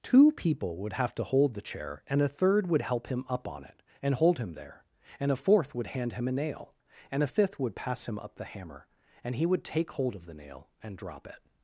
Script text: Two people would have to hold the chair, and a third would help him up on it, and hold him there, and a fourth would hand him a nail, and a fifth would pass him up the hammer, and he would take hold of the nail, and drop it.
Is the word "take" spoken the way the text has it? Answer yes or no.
yes